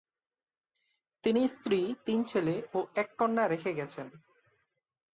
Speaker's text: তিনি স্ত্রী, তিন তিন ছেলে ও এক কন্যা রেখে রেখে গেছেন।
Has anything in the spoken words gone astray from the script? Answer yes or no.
yes